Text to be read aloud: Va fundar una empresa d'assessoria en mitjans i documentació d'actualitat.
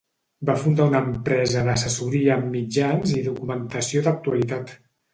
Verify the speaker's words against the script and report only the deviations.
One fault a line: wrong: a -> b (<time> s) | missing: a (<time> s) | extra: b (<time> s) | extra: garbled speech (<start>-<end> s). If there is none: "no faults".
no faults